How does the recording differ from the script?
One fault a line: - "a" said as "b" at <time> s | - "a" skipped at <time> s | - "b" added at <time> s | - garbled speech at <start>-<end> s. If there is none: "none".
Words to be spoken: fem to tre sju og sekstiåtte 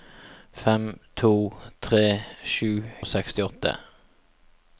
none